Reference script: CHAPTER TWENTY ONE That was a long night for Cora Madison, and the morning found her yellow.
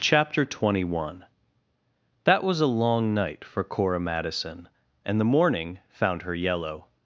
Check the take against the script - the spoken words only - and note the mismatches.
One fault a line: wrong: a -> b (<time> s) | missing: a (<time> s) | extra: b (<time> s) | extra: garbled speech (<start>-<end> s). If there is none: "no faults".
no faults